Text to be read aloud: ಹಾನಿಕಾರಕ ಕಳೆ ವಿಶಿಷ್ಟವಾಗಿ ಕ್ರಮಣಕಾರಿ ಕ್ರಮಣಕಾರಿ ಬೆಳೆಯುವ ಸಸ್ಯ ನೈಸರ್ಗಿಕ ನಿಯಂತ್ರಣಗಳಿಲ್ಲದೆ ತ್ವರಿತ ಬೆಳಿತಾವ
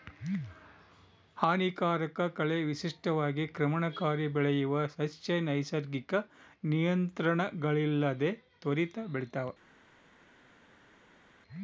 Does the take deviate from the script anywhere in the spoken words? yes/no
yes